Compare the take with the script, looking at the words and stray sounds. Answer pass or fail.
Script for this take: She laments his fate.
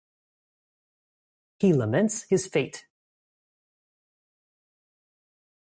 fail